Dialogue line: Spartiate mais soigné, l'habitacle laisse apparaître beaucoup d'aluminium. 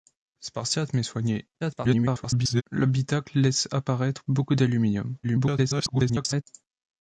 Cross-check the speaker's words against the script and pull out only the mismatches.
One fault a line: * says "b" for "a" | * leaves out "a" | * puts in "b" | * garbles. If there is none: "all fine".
* garbles
* garbles